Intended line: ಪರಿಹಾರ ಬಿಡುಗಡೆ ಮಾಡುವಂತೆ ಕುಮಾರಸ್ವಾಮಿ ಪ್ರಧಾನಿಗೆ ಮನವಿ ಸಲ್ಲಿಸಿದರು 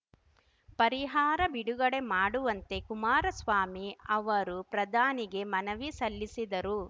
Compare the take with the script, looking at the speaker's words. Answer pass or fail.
fail